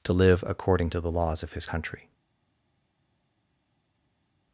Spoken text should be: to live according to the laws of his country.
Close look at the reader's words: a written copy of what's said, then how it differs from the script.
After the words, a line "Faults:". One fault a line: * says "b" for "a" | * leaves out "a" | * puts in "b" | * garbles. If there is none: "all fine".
to live according to the laws of his country.
Faults:
all fine